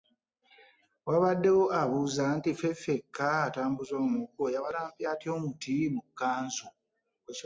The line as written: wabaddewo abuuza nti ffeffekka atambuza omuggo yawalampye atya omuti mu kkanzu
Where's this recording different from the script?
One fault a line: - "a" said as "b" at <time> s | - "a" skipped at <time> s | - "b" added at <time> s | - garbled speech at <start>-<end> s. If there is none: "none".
none